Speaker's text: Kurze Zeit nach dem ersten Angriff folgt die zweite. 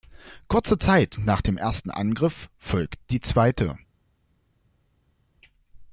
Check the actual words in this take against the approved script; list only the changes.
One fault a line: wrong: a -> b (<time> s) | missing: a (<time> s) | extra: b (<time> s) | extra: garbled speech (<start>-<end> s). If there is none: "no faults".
no faults